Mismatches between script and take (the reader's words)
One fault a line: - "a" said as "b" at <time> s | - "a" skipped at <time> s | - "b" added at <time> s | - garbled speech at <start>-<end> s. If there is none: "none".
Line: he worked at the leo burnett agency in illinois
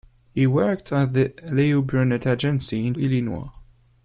none